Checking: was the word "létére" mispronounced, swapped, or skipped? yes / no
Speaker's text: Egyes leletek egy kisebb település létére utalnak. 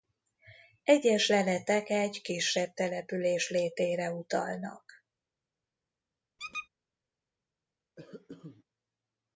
no